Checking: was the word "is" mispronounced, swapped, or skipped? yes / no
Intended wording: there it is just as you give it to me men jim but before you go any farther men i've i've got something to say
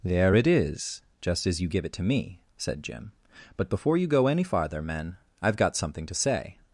no